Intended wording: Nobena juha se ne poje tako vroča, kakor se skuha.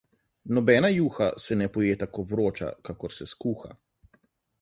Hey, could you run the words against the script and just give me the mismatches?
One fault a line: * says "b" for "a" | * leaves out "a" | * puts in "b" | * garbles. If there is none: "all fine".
all fine